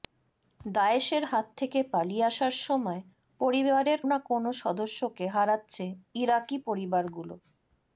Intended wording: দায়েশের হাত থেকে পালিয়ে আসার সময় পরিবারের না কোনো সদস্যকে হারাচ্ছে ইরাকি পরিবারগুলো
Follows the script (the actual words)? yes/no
yes